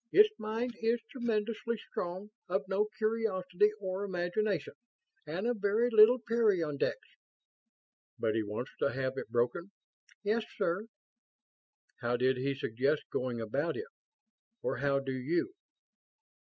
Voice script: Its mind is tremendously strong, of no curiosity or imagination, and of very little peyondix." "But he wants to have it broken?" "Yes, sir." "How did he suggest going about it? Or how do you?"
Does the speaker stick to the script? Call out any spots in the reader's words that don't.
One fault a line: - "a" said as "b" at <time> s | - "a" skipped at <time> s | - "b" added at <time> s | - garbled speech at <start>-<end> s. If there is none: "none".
none